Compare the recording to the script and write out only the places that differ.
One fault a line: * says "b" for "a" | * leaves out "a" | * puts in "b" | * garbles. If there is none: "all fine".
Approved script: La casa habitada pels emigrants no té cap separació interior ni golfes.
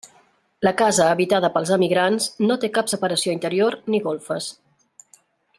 all fine